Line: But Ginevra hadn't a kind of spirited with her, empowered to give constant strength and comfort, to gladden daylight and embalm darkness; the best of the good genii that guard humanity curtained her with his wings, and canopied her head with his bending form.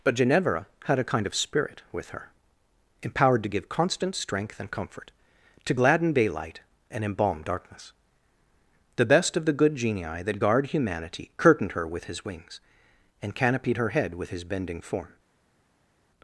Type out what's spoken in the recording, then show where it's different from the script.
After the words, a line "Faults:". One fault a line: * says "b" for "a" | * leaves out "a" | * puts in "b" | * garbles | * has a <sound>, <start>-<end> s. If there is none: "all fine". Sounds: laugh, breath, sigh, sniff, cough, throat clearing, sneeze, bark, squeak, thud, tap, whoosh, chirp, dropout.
But Ginevra had a kind of spirit with her, empowered to give constant strength and comfort, to gladden daylight and embalm darkness; the best of the good genii that guard humanity curtained her with his wings, and canopied her head with his bending form.
Faults:
* says "had" for "hadn't"
* says "spirit" for "spirited"